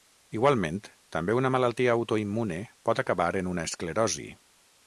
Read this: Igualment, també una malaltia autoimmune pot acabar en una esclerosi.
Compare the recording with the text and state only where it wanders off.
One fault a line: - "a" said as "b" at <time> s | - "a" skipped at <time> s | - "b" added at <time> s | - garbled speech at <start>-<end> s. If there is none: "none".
none